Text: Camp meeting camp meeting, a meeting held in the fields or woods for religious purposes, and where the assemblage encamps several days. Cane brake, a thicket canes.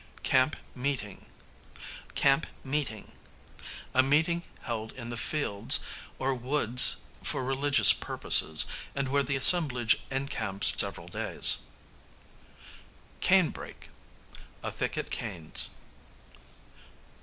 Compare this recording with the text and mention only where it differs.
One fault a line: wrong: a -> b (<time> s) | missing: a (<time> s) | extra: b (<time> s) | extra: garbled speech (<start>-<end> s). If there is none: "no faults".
no faults